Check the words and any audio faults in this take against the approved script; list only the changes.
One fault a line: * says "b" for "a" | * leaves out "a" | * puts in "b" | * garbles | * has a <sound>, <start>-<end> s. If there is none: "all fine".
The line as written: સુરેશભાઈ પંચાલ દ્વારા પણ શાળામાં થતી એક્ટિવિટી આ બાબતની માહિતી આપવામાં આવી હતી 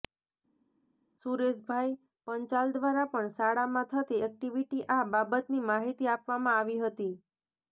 all fine